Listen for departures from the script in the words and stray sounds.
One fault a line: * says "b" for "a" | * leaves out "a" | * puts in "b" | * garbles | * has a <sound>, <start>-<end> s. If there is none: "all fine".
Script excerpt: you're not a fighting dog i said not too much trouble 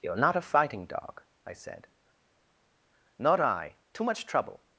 * puts in "i"